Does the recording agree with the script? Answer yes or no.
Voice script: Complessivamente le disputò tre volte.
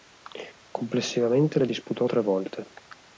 yes